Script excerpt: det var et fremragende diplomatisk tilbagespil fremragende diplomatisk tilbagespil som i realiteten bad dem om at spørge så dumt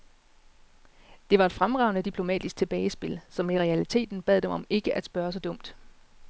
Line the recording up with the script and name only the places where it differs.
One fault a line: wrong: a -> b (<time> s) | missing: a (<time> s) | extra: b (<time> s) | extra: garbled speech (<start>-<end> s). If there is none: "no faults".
missing: fremragende diplomatisk tilbagespil (3.2 s)
extra: ikke (4.7 s)